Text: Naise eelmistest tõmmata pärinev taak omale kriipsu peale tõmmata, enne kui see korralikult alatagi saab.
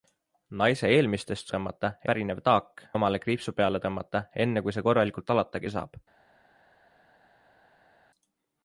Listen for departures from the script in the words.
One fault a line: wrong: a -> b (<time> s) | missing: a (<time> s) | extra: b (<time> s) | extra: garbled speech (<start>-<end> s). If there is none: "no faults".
no faults